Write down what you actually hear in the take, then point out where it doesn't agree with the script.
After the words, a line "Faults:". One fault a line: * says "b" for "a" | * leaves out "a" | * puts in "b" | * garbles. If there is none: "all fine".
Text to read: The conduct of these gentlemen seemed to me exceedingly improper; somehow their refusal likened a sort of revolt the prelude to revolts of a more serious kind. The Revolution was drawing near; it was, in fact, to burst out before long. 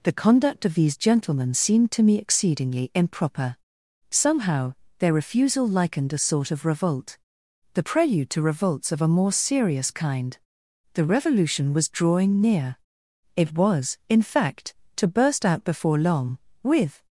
The conduct of these gentlemen seemed to me exceedingly improper; somehow their refusal likened a sort of revolt the prelude to revolts of a more serious kind. The Revolution was drawing near; it was, in fact, to burst out before long. With
Faults:
* puts in "With"